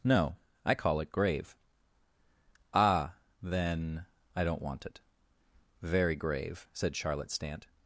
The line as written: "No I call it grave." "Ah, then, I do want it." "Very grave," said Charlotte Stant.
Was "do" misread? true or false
true